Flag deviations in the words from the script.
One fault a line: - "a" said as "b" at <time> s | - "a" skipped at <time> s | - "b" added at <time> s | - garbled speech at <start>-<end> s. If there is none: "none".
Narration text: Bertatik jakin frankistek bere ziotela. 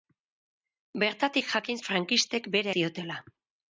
none